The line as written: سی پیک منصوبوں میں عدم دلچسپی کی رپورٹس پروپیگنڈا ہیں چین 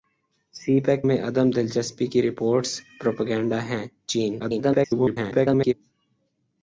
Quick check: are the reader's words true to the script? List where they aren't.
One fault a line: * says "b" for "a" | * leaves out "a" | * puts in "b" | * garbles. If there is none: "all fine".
* leaves out "منصوبوں"
* garbles